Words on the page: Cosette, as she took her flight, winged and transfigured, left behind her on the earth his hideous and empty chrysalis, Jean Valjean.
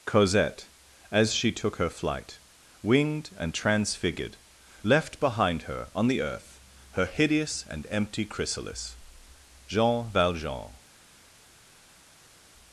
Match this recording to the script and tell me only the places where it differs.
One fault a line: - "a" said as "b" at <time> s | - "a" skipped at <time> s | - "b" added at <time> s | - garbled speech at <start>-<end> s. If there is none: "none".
- "his" said as "her" at 6.9 s